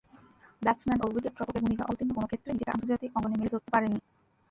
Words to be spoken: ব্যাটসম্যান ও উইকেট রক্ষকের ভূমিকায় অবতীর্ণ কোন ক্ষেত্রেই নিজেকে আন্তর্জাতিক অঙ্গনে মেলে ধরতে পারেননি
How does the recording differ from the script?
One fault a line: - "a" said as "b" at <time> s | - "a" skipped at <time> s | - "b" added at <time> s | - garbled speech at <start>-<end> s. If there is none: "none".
none